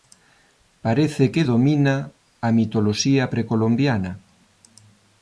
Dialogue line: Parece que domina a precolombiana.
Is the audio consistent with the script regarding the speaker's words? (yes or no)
no